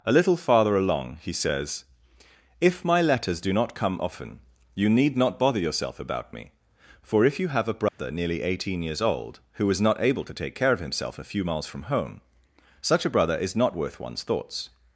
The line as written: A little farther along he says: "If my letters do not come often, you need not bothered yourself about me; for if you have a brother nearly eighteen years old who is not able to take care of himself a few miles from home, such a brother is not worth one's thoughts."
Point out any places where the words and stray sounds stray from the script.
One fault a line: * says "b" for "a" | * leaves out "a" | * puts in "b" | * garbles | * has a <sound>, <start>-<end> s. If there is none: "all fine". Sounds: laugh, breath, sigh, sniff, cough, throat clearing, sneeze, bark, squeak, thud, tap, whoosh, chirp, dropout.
* says "bother" for "bothered"
* has a dropout, 7.9-8.0 s